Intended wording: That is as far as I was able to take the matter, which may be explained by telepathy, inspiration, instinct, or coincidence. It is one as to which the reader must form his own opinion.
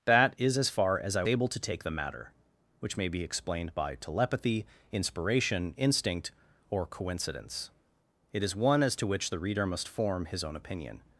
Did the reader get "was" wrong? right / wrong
wrong